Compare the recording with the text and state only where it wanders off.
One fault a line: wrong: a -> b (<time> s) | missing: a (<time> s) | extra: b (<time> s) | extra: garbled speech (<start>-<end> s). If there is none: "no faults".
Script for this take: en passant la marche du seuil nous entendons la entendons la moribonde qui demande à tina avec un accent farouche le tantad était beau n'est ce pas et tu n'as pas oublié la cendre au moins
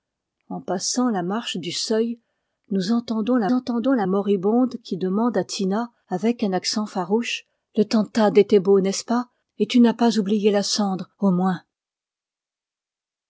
no faults